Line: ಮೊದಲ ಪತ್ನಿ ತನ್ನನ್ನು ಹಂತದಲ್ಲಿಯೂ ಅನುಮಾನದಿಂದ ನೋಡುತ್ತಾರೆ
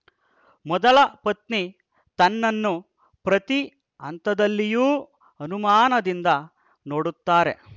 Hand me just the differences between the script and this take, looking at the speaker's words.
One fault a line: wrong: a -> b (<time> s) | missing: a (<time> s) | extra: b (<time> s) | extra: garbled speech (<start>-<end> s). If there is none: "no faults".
extra: ಪ್ರತಿ (3.3 s)